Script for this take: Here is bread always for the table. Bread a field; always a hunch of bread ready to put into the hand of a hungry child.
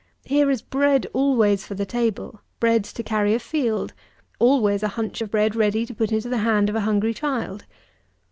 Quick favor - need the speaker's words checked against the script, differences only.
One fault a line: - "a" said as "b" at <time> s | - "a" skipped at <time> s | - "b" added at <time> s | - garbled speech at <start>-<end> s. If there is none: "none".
- "to carry" added at 2.9 s